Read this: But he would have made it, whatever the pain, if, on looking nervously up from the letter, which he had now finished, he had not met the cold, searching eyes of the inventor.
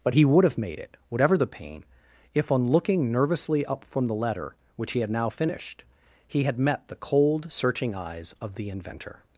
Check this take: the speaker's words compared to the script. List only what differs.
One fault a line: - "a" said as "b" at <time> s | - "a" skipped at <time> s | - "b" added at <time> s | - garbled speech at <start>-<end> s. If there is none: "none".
- "not" skipped at 6.6 s